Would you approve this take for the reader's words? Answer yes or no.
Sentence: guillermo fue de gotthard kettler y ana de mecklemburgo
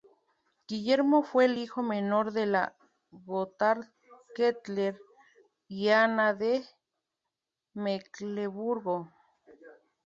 no